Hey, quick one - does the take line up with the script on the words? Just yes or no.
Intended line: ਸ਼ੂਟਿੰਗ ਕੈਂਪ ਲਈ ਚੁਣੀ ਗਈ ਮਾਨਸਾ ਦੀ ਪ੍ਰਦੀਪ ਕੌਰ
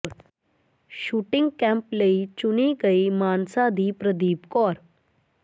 yes